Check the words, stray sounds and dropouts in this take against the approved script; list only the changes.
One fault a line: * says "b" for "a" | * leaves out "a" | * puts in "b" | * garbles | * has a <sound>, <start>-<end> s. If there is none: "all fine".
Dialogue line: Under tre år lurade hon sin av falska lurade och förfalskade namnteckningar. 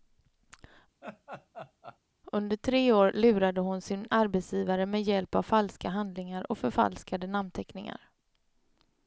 * has a laugh, 1.0-2.0 s
* puts in "arbetsgivare med hjälp"
* says "handlingar" for "lurade"